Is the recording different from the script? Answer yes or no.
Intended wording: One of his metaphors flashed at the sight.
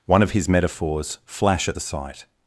yes